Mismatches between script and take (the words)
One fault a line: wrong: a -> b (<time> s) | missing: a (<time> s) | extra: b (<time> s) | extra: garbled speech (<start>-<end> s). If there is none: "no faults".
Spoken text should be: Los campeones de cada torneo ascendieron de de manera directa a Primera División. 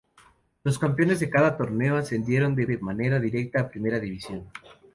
no faults